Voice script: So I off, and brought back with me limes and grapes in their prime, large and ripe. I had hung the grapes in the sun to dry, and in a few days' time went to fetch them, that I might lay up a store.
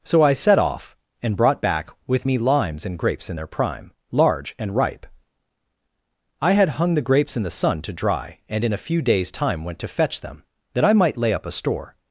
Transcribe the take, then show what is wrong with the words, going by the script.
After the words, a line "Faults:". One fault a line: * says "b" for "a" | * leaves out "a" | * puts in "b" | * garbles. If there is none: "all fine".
So I set off, and brought back with me limes and grapes in their prime, large and ripe. I had hung the grapes in the sun to dry, and in a few days' time went to fetch them, that I might lay up a store.
Faults:
* puts in "set"